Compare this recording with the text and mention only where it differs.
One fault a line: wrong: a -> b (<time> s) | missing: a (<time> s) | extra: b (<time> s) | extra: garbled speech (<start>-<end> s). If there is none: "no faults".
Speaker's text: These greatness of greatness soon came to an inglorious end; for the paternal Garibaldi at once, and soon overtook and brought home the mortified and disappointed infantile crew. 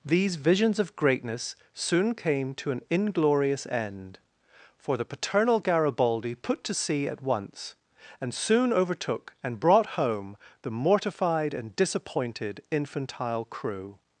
wrong: greatness -> visions (0.4 s)
extra: put to sea (6.3 s)